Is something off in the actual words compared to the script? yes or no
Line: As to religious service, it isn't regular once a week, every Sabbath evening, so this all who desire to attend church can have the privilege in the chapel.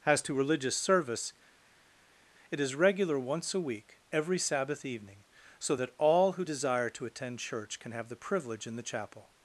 yes